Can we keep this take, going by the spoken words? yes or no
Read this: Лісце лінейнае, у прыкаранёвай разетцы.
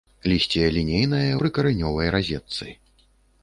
no